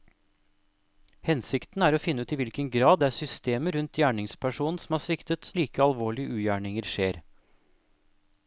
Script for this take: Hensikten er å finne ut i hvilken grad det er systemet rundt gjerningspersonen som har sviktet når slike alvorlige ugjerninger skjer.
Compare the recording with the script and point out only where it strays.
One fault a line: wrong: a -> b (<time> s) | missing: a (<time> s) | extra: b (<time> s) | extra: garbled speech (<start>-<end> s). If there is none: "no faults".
missing: når (5.5 s)